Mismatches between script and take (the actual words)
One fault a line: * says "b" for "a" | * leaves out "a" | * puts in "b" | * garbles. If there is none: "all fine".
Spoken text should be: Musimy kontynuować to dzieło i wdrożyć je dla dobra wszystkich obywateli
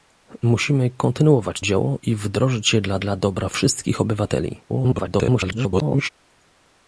* leaves out "to"
* puts in "dla"
* garbles